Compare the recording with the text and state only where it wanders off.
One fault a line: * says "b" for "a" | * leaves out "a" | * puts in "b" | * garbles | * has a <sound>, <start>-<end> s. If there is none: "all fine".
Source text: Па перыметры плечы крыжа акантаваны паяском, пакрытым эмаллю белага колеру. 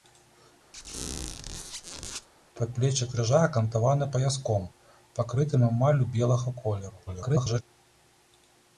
* has a squeak, 0.7-2.3 s
* leaves out "перыметры"
* garbles